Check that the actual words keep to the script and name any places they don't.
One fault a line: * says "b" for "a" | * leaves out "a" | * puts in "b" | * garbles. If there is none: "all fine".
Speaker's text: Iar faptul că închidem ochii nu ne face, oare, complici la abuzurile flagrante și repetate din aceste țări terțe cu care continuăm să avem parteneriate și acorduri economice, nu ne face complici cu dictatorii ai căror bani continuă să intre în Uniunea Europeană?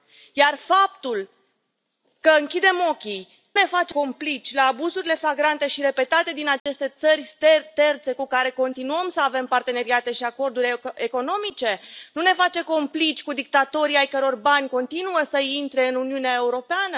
* leaves out "nu"
* leaves out "oare"